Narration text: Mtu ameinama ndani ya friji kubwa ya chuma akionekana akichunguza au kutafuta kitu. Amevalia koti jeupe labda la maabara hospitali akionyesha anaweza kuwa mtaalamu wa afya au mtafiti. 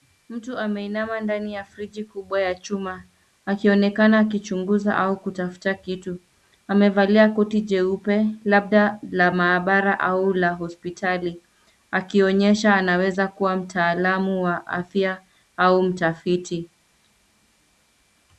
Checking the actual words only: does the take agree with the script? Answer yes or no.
no